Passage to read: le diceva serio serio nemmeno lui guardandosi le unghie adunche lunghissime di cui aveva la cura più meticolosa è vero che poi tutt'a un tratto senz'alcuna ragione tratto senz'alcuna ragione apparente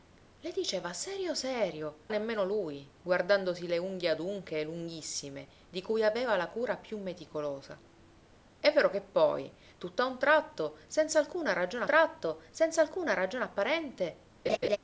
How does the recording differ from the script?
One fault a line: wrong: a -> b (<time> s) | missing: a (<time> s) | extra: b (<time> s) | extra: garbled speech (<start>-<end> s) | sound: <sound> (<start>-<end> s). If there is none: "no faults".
sound: laugh (14.5-14.8 s)